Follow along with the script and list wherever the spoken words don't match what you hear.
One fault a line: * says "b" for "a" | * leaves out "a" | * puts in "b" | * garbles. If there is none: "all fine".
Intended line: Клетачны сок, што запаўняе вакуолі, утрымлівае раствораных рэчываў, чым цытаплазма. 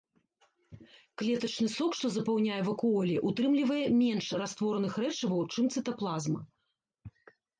* puts in "менш"